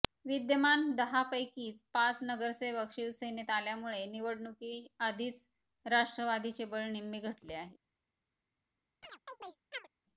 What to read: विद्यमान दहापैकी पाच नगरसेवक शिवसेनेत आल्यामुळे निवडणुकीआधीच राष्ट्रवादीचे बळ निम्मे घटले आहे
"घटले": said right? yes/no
yes